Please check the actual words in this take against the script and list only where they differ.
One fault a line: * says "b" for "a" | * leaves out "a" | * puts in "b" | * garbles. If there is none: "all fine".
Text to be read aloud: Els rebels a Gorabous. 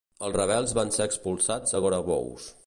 * puts in "van ser expulsats"